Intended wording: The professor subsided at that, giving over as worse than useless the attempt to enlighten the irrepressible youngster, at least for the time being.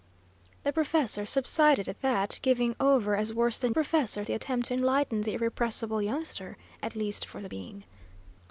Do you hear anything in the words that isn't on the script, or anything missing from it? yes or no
yes